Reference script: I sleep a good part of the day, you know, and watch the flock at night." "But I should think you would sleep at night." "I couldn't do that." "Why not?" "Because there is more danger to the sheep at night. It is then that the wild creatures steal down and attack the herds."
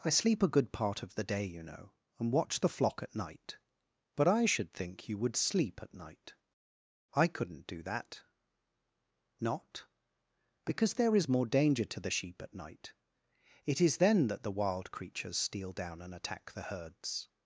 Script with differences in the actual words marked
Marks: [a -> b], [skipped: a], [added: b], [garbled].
I sleep a good part of the day, you know, and watch the flock at night." "But I should think you would sleep at night." "I couldn't do that." [skipped: "Why] not?" "Because there is more danger to the sheep at night. It is then that the wild creatures steal down and attack the herds."